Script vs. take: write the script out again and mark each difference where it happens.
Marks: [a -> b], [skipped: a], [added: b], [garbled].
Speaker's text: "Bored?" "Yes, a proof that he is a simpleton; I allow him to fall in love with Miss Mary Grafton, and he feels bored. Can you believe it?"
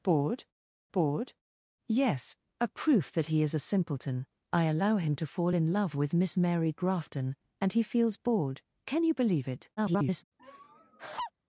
"Bored?" [added: bored] "Yes, a proof that he is a simpleton; I allow him to fall in love with Miss Mary Grafton, and he feels bored. Can you believe it?" [garbled]